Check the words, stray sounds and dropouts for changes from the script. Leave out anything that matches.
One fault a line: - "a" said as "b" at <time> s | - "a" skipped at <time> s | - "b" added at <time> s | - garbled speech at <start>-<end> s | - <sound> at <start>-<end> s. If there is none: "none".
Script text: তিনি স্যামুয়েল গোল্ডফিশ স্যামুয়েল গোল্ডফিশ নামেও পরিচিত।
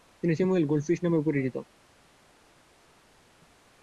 - "স্যামুয়েল গোল্ডফিশ" skipped at 1.0 s